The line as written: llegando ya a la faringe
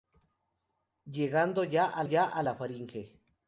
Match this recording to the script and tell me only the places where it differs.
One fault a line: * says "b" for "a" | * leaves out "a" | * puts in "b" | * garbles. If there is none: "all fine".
* puts in "ya a"